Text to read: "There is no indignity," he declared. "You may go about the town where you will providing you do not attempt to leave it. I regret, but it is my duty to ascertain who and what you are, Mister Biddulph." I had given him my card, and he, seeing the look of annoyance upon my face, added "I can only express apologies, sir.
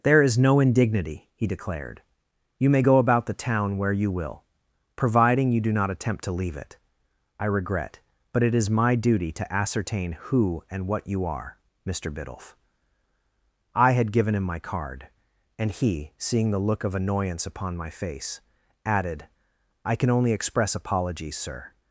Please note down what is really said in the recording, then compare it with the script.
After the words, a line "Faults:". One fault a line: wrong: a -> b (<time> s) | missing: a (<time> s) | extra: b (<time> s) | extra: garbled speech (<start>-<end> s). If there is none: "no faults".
"There is no indignity," he declared. "You may go about the town where you will providing you do not attempt to leave it. I regret, but it is my duty to ascertain who and what you are, Mister Biddulph." I had given him my card, and he, seeing the look of annoyance upon my face, added "I can only express apologies, sir.
Faults:
no faults